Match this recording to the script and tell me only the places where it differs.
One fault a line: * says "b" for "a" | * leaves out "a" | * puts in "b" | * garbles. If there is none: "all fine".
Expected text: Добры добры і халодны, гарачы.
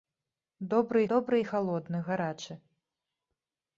all fine